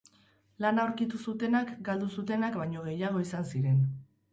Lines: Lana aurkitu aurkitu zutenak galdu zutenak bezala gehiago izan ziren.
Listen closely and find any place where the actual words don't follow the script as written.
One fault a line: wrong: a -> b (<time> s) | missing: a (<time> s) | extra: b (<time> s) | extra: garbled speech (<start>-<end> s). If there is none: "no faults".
missing: aurkitu (1.2 s)
wrong: bezala -> baino (2.6 s)